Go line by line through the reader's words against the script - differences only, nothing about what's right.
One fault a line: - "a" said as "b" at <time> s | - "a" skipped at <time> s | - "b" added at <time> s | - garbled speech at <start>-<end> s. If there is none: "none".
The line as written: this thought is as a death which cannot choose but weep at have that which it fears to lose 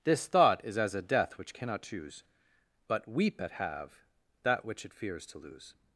none